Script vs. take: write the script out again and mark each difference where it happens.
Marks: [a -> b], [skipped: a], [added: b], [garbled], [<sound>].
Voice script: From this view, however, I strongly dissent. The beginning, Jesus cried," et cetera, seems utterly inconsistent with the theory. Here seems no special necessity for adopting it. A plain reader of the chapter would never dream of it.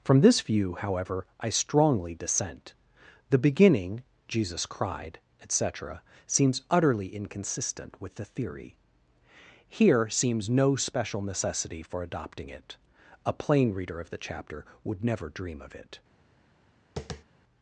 From this view, however, I strongly dissent. The beginning, Jesus cried," et cetera, seems utterly inconsistent with the theory. Here seems no special necessity for adopting it. A plain reader of the chapter would never dream of it. [tap]